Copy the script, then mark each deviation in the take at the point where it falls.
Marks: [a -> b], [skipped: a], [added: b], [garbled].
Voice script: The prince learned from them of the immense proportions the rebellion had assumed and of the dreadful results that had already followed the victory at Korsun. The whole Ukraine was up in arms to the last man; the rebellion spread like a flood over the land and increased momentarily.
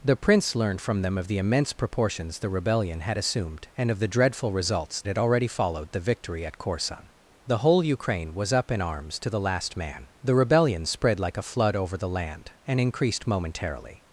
The prince learned from them of the immense proportions the rebellion had assumed and of the dreadful results [skipped: that] had already followed the victory at Korsun. The whole Ukraine was up in arms to the last man; the rebellion spread like a flood over the land and increased momentarily.